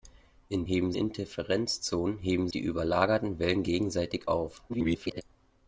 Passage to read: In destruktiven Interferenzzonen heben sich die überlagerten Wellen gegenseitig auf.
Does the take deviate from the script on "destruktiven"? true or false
true